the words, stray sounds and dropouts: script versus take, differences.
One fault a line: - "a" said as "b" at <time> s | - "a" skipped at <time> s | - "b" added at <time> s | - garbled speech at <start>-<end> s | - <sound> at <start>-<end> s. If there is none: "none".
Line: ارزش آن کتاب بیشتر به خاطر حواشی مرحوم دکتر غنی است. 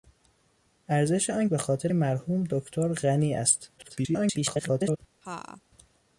- "کتاب بیشتر" skipped at 1.5 s
- "حواشی" skipped at 1.9 s
- garbled speech at 3.8-5.0 s
- laugh at 5.2-5.6 s